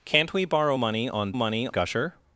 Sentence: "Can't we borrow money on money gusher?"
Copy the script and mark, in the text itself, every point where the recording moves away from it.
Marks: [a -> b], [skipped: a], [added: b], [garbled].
"Can't we borrow money on money gusher?"